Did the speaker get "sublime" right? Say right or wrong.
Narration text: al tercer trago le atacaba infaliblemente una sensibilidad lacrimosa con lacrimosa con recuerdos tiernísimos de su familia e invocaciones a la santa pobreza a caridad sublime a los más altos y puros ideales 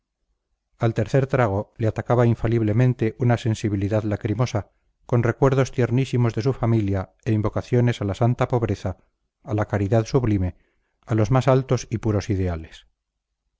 right